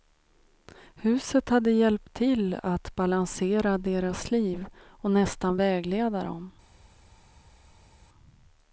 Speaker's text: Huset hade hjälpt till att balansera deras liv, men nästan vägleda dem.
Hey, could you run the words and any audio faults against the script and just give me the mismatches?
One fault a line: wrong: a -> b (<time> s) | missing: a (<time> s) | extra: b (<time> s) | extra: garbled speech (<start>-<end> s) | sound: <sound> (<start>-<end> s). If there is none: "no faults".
wrong: men -> och (4.8 s)